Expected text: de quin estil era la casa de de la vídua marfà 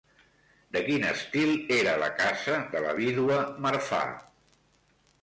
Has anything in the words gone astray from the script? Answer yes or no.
yes